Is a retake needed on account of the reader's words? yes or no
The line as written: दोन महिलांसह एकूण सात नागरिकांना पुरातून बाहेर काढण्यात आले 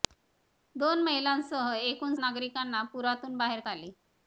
yes